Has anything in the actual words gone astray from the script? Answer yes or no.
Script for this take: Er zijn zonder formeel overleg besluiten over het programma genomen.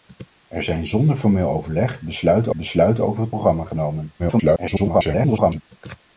yes